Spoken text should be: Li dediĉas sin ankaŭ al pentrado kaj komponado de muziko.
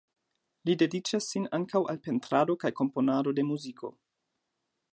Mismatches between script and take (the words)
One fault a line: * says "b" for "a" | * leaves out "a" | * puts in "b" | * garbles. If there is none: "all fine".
all fine